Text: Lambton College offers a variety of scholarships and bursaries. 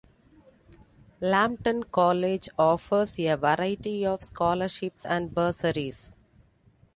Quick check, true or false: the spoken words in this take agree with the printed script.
true